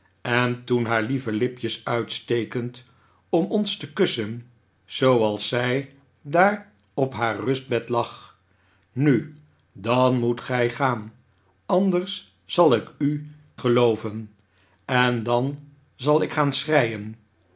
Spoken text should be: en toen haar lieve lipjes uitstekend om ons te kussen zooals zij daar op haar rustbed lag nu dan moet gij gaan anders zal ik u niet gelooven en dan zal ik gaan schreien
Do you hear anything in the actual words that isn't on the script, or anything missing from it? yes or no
yes